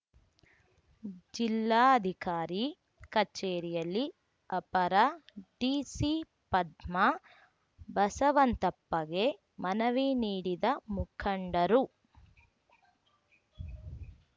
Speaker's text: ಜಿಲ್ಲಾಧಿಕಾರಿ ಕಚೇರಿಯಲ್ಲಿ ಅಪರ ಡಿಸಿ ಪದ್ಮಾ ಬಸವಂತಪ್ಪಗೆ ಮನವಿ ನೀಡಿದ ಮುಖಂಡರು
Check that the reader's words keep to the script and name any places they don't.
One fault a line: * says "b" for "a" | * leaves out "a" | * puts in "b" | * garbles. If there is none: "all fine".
all fine